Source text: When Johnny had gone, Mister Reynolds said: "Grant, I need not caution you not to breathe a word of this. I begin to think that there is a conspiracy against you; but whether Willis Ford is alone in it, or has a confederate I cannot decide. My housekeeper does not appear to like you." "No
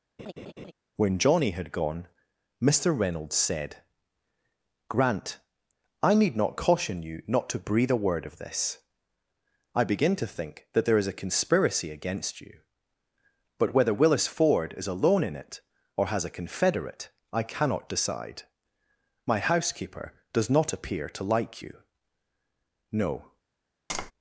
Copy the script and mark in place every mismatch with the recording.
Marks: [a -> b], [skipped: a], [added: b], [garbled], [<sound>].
[laugh] When Johnny had gone, Mister Reynolds said: "Grant, I need not caution you not to breathe a word of this. I begin to think that there is a conspiracy against you; but whether Willis Ford is alone in it, or has a confederate I cannot decide. My housekeeper does not appear to like you." "No [tap]